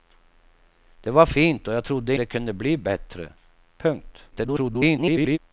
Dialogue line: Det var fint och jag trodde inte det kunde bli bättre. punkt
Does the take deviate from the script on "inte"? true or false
true